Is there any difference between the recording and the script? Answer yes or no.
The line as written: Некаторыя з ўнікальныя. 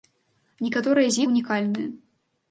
no